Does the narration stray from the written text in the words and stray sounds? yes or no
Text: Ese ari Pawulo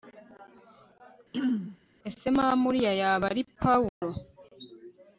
yes